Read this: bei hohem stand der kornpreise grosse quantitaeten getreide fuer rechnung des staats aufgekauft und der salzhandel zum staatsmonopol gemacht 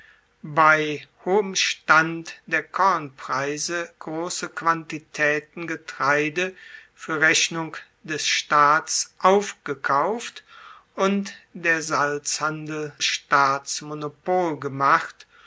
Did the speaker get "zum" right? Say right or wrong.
wrong